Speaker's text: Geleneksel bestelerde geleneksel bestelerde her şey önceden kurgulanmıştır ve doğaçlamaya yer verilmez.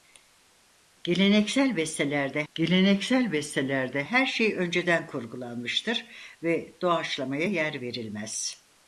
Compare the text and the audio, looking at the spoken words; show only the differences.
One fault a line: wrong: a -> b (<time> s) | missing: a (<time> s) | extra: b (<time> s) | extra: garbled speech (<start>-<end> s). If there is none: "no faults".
no faults